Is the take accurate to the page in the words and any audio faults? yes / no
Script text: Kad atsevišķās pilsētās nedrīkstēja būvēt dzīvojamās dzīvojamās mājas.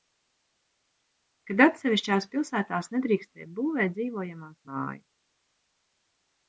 no